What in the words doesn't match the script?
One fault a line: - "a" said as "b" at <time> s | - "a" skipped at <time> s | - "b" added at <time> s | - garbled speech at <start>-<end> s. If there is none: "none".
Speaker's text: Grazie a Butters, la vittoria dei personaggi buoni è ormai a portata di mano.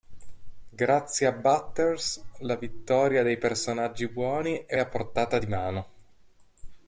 - "ormai" skipped at 4.8 s